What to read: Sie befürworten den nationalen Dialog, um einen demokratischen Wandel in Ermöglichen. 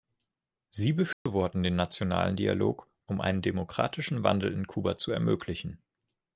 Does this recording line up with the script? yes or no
no